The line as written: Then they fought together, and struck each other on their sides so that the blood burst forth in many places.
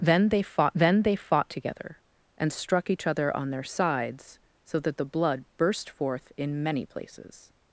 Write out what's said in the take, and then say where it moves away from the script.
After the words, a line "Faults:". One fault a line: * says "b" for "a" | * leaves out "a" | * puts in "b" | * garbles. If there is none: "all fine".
Then they fought then they fought together, and struck each other on their sides so that the blood burst forth in many places.
Faults:
* puts in "then they fought"